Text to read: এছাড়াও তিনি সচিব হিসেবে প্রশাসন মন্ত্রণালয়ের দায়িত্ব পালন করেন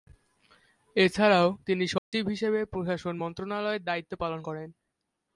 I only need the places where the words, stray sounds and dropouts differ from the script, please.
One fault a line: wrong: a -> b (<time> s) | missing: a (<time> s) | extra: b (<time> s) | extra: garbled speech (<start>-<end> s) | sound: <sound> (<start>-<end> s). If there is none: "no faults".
sound: dropout (2.0-2.1 s)